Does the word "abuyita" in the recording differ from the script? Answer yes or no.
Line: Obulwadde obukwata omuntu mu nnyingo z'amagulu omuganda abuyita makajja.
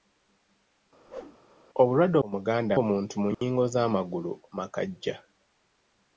yes